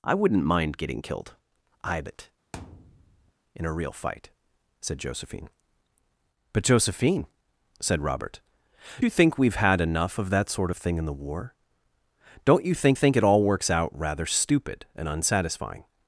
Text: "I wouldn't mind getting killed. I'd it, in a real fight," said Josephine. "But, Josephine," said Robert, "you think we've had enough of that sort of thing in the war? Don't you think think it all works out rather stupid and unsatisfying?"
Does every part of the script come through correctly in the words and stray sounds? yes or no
no